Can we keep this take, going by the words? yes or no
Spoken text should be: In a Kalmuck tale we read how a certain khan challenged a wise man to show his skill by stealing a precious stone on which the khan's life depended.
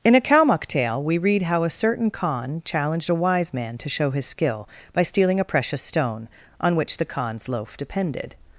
no